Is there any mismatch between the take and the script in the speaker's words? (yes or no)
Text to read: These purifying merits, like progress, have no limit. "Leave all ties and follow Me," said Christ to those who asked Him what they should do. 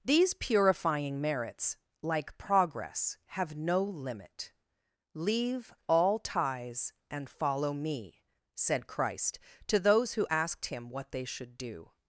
no